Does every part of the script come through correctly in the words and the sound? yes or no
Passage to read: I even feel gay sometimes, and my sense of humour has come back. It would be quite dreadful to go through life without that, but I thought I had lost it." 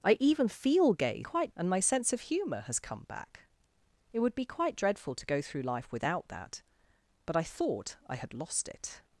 no